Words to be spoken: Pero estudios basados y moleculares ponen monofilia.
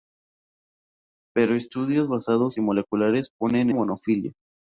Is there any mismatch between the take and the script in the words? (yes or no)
no